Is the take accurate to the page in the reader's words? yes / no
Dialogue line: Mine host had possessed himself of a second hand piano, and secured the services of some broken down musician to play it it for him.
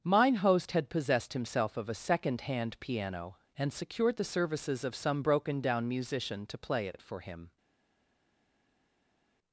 yes